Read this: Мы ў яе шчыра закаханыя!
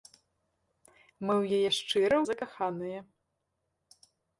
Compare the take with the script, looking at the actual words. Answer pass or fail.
pass